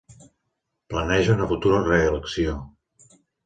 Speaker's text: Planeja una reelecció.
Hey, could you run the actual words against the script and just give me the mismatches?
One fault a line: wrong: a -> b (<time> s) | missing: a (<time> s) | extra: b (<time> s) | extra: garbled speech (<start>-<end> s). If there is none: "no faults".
extra: futura (1.4 s)